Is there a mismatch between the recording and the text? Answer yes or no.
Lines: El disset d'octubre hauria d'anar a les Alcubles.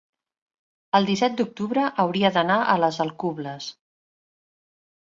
no